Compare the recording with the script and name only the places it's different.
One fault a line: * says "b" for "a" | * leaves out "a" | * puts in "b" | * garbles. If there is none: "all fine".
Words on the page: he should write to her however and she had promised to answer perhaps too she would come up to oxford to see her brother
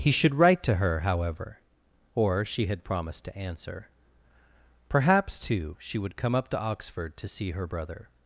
* says "or" for "and"